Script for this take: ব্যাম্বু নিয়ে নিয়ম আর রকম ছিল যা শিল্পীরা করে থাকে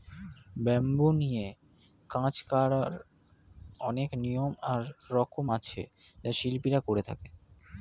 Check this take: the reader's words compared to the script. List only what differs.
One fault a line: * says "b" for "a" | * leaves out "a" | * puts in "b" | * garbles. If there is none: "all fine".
* puts in "কাজ করার অনেক"
* says "আছে" for "ছিল"